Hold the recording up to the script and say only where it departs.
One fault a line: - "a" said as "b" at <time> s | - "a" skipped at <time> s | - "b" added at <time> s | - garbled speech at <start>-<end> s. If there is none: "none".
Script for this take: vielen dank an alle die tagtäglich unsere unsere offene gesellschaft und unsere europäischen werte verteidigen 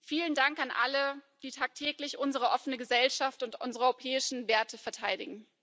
- "unsere" skipped at 2.5 s